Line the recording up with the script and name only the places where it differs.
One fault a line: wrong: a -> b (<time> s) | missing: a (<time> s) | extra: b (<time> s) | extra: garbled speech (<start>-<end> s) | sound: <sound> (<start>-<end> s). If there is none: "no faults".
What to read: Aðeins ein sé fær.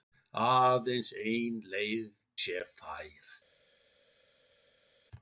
extra: leið (1.7 s)